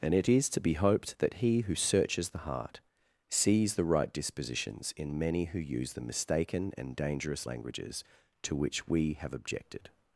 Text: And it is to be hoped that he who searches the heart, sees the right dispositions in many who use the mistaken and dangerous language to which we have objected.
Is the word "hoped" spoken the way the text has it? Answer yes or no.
yes